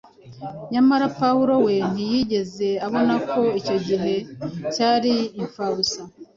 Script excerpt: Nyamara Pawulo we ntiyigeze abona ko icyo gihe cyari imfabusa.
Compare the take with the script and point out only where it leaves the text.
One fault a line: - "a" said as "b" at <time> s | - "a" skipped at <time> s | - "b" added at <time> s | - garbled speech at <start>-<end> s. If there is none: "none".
none